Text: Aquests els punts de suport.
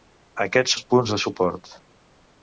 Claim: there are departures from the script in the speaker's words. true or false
false